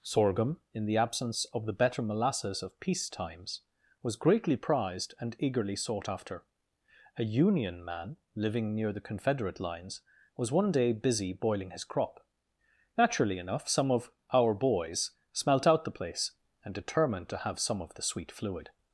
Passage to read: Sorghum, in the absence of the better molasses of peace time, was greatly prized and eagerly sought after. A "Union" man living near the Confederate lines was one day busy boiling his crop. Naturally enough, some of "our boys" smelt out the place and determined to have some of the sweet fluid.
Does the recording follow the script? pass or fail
fail